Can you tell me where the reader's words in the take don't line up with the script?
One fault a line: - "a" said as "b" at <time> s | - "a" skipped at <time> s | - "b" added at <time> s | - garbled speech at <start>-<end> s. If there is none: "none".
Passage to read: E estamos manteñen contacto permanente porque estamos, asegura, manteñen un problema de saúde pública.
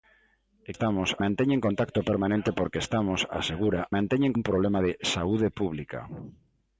none